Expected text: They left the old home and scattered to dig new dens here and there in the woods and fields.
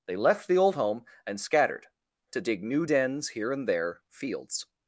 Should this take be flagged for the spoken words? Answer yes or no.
yes